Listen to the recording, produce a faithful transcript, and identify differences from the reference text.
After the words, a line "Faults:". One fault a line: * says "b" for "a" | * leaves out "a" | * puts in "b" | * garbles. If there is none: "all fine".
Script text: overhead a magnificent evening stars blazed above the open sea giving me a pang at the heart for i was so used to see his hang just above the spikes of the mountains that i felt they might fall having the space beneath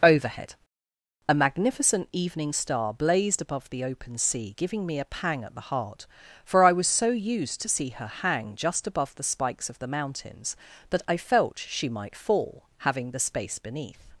overhead a magnificent evening star blazed above the open sea giving me a pang at the heart for i was so used to see her hang just above the spikes of the mountains that i felt she might fall having the space beneath
Faults:
* says "star" for "stars"
* says "her" for "his"
* says "she" for "they"